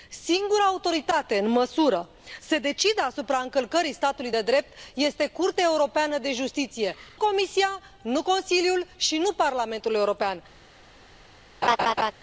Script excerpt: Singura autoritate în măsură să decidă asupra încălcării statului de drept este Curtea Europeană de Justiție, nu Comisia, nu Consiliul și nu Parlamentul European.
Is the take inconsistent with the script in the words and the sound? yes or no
yes